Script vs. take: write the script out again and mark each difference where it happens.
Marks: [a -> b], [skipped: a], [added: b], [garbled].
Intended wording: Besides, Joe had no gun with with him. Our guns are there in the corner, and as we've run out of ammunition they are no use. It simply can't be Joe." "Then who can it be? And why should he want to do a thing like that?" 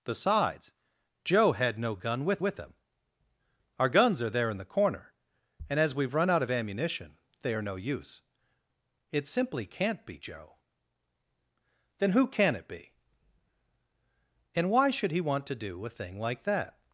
Besides, Joe had no gun with with him. Our guns are there in the corner, and as we've run out of ammunition they are no use. It simply can't be Joe." "Then who can it be? And why should he want to do a thing like that?"